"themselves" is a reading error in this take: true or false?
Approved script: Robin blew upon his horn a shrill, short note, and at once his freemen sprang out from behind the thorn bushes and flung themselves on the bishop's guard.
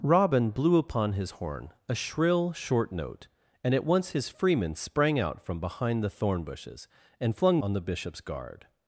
true